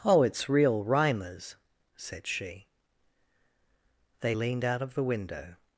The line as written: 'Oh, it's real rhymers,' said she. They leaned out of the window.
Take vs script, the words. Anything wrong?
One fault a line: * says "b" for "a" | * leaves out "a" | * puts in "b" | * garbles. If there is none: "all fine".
all fine